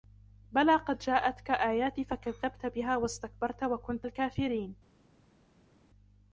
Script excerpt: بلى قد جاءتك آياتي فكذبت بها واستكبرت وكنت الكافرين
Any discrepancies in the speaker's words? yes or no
no